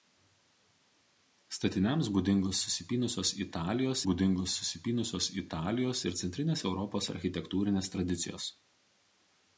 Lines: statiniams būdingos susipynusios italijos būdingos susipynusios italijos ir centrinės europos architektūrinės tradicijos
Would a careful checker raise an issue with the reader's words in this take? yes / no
no